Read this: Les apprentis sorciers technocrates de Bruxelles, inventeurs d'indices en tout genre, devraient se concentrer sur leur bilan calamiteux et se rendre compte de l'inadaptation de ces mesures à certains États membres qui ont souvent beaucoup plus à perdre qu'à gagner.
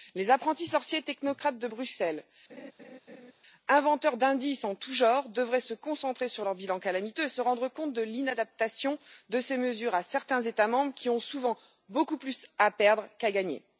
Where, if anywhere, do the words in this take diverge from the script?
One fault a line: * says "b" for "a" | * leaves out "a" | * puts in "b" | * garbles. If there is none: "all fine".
all fine